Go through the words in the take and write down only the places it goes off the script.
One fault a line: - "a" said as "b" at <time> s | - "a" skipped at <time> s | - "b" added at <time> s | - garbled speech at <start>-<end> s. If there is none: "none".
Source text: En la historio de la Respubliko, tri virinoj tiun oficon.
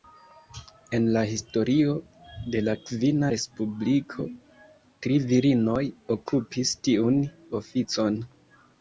- "kvina" added at 2.9 s
- "okupis" added at 6.2 s